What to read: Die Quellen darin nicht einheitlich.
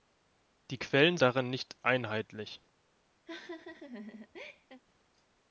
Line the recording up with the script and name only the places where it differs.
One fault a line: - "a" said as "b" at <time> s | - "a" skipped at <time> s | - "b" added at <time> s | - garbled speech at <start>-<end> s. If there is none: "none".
none